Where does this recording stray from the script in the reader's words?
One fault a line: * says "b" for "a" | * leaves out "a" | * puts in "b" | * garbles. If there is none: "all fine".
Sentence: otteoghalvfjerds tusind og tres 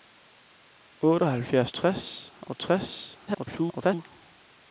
* says "tres" for "tusind"
* garbles